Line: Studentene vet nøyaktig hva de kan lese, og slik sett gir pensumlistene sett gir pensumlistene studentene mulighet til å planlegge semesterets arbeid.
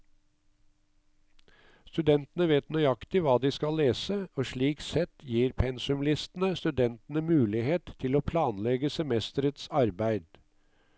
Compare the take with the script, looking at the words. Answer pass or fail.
fail